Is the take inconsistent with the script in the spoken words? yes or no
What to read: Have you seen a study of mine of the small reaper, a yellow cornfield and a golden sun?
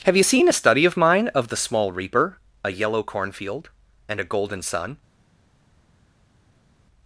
no